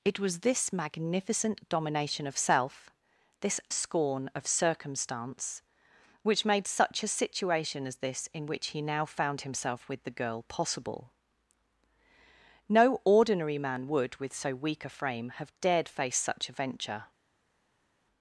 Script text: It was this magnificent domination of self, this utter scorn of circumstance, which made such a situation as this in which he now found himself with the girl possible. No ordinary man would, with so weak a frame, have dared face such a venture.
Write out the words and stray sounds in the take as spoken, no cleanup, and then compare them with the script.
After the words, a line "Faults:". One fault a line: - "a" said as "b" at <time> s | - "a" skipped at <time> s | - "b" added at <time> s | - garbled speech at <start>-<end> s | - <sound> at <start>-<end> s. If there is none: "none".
It was this magnificent domination of self, this scorn of circumstance, which made such a situation as this in which he now found himself with the girl possible. No ordinary man would, with so weak a frame, have dared face such a venture.
Faults:
- "utter" skipped at 3.6 s